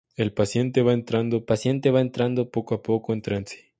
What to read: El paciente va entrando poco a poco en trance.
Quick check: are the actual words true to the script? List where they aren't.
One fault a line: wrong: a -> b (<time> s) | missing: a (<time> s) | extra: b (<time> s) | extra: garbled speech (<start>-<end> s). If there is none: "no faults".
extra: paciente va entrando (1.4 s)